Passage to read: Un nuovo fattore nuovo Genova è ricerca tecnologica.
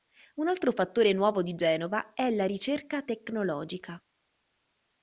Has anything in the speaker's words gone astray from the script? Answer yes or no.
yes